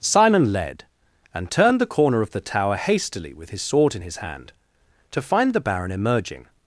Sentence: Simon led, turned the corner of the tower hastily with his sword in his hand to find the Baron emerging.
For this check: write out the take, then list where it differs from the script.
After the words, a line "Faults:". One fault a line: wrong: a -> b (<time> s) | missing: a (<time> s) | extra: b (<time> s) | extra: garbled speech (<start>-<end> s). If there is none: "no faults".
Simon led, and turned the corner of the tower hastily with his sword in his hand to find the Baron emerging.
Faults:
extra: and (1.3 s)